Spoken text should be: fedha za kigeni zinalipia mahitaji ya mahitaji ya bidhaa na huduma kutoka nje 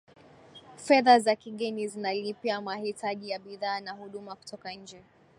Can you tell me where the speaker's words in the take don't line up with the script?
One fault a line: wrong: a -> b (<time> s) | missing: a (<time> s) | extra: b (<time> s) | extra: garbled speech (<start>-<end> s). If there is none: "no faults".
missing: mahitaji ya (3.4 s)